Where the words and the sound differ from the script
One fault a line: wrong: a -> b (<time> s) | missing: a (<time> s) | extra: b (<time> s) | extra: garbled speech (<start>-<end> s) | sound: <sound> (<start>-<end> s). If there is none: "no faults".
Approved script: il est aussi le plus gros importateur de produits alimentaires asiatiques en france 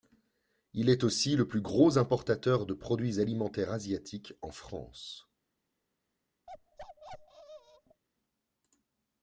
sound: bark (6.5-8.0 s)